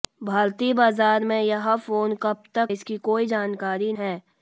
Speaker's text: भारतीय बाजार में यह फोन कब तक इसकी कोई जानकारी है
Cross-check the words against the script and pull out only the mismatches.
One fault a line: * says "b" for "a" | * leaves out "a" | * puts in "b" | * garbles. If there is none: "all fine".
all fine